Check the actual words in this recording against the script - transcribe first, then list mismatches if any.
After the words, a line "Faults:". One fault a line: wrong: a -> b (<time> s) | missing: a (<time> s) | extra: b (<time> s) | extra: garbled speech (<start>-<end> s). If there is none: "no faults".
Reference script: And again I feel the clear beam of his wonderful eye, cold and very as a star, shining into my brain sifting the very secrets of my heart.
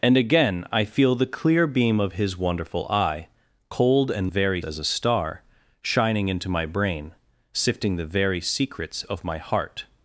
And again I feel the clear beam of his wonderful eye, cold and very as a star, shining into my brain sifting the very secrets of my heart.
Faults:
no faults